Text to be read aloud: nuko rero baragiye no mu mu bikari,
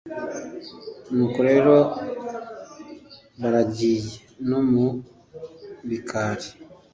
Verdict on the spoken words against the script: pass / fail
fail